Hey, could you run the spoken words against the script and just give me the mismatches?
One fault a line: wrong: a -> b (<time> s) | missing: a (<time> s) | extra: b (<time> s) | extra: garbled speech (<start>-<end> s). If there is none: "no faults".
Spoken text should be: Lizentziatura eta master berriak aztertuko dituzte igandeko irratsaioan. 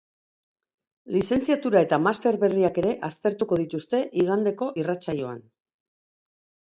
extra: ere (2.8 s)